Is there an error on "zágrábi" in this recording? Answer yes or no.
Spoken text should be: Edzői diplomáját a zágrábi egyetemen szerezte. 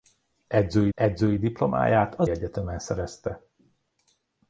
yes